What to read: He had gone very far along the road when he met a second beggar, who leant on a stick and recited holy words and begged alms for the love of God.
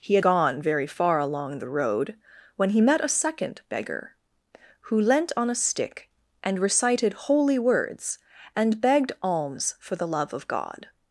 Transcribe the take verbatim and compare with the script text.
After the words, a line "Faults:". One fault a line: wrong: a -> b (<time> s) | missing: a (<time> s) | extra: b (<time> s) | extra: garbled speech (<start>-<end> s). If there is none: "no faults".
He had gone very far along the road when he met a second beggar, who leant on a stick and recited holy words and begged alms for the love of God.
Faults:
no faults